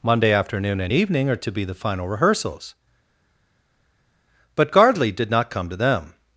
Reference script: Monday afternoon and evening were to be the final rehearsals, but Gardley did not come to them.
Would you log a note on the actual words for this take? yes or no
yes